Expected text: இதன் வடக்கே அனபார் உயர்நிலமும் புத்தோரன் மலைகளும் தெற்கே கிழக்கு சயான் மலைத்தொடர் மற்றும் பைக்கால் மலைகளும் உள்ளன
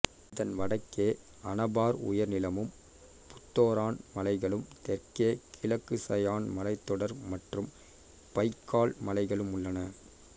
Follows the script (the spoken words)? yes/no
yes